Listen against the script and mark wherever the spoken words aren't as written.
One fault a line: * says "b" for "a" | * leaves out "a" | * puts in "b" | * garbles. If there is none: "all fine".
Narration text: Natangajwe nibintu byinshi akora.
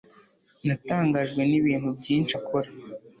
all fine